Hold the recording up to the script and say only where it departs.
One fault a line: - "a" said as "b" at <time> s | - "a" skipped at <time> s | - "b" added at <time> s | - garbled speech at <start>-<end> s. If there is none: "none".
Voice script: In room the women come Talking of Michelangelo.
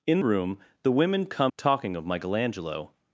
none